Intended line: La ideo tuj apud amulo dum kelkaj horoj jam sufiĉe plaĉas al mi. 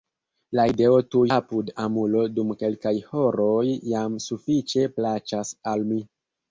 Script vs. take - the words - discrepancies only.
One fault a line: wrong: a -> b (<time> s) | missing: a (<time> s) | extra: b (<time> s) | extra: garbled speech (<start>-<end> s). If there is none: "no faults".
no faults